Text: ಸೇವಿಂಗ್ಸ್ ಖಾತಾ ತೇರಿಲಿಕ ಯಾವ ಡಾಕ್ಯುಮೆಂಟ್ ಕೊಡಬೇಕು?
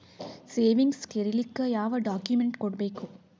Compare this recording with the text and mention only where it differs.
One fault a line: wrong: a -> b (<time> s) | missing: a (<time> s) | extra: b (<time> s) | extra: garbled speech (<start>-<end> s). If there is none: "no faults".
missing: ಖಾತಾ (1.1 s)